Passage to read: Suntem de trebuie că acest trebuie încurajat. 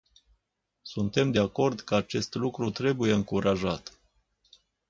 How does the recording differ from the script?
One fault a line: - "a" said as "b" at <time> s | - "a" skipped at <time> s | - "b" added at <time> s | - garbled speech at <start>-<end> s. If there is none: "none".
- "trebuie" said as "acord" at 1.4 s
- "lucru" added at 2.3 s